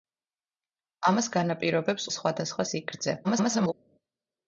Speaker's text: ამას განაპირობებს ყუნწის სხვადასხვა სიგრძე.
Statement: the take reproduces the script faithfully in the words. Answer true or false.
false